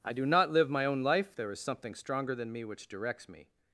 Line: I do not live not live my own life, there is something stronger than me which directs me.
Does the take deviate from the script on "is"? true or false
false